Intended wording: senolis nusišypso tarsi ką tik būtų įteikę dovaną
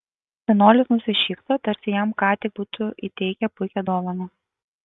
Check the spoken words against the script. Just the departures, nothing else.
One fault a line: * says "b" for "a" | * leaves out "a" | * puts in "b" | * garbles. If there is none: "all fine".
* puts in "jam"
* puts in "puikią"